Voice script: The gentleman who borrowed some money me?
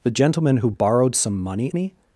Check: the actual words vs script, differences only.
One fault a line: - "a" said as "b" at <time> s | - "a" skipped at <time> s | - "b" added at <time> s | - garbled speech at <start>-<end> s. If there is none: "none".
none